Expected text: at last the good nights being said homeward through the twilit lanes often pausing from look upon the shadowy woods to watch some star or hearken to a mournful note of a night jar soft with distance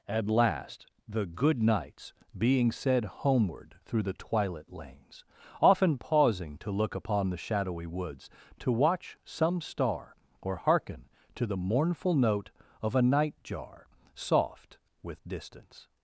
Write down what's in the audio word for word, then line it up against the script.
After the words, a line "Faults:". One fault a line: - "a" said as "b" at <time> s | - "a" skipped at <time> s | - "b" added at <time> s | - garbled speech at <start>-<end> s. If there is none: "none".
at last the good nights being said homeward through the twilit lanes often pausing to look upon the shadowy woods to watch some star or hearken to the mournful note of a night jar soft with distance
Faults:
- "from" said as "to" at 6.6 s
- "a" said as "the" at 11.5 s